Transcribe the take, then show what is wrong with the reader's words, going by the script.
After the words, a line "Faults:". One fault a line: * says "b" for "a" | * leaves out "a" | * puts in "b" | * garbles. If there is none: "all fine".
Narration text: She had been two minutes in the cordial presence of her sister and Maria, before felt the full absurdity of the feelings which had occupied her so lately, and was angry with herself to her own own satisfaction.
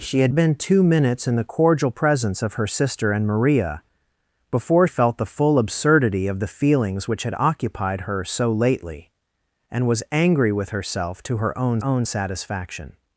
She had been two minutes in the cordial presence of her sister and Maria, before felt the full absurdity of the feelings which had occupied her so lately, and was angry with herself to her own own satisfaction.
Faults:
all fine